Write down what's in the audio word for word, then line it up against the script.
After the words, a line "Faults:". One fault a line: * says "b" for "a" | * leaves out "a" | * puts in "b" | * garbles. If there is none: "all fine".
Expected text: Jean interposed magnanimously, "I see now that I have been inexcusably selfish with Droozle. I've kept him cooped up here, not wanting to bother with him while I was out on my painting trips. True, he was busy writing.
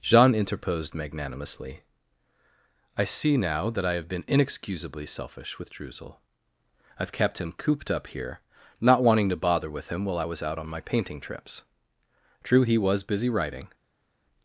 Jean interposed magnanimously, "I see now that I have been inexcusably selfish with Droozle. I've kept him cooped up here, not wanting to bother with him while I was out on my painting trips. True, he was busy writing.
Faults:
all fine